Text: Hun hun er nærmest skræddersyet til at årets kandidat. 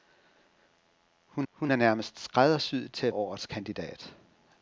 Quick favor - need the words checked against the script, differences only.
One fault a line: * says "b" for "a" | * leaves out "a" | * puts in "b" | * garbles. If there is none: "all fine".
all fine